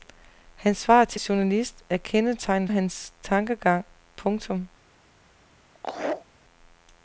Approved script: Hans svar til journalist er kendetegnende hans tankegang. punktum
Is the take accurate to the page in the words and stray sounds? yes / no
no